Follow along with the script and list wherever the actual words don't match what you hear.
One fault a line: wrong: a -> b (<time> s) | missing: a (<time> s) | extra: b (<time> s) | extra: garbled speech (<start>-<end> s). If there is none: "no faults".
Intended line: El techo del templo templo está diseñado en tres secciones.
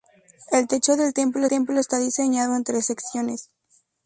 no faults